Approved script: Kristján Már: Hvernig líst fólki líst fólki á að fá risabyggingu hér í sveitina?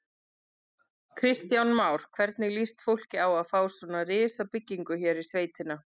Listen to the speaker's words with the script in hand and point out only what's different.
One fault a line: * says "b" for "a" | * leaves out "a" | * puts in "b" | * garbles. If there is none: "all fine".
* leaves out "líst fólki"
* puts in "svona"